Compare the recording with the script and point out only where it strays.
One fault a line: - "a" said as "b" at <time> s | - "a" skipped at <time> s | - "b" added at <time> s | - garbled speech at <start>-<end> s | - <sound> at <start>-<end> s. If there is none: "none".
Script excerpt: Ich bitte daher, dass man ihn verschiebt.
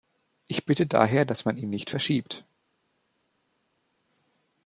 - "nicht" added at 1.7 s